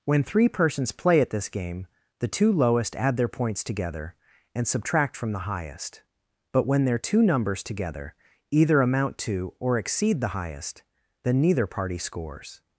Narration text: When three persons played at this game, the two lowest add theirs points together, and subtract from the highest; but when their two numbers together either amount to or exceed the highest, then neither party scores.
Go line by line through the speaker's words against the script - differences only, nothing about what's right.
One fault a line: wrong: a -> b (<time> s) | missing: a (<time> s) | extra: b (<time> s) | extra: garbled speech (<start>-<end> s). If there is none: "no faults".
wrong: played -> play (0.9 s)
wrong: theirs -> their (3.2 s)